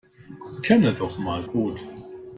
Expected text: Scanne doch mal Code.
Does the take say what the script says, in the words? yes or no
yes